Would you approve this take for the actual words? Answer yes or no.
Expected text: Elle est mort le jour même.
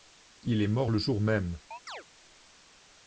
no